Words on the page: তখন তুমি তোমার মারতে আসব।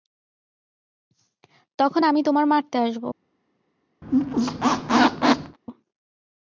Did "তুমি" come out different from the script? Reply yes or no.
yes